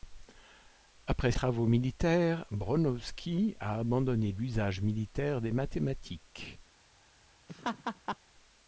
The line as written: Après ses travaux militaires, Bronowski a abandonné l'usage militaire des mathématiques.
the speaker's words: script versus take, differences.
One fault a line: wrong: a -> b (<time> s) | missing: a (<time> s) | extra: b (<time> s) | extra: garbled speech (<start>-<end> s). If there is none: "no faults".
missing: ses (1.3 s)